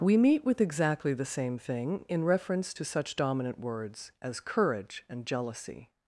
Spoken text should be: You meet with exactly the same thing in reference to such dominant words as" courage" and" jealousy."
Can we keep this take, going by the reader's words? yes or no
no